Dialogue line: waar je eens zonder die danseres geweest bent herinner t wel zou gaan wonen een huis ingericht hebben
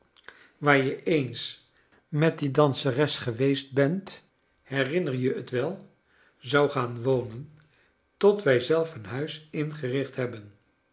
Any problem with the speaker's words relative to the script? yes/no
yes